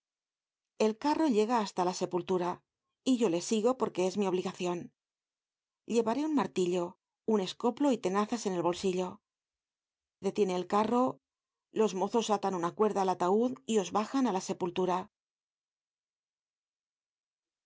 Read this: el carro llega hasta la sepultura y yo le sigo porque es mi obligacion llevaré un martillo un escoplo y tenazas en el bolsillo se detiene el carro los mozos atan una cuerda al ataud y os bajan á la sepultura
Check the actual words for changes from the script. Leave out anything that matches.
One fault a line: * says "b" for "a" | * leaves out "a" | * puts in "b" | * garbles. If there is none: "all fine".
* leaves out "se"